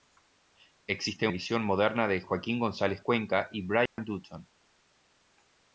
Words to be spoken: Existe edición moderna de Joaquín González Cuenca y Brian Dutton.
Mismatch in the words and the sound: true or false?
true